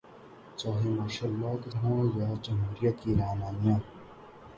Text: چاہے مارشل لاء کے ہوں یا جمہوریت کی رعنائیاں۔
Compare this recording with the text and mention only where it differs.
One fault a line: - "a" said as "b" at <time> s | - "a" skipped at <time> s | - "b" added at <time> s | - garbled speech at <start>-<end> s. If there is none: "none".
none